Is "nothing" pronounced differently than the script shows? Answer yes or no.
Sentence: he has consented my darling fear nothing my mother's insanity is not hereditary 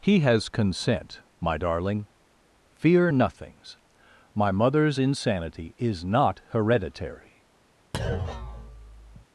yes